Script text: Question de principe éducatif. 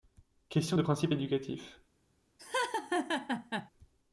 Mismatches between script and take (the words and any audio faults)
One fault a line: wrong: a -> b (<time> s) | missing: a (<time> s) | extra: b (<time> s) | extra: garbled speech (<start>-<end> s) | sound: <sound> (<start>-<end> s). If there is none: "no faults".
sound: laugh (2.4-3.7 s)